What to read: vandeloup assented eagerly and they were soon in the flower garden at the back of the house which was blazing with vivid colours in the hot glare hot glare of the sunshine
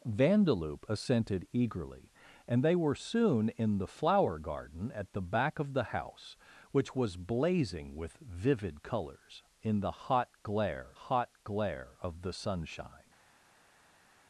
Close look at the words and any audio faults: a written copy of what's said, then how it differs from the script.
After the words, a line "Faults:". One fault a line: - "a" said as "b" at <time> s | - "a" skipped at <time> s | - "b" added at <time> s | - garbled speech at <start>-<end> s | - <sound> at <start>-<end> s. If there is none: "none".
vandeloup assented eagerly and they were soon in the flower garden at the back of the house which was blazing with vivid colours in the hot glare hot glare of the sunshine
Faults:
none